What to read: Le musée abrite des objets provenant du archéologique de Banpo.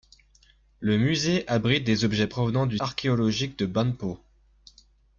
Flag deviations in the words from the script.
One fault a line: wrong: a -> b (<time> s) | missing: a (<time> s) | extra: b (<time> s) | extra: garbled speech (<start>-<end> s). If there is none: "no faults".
no faults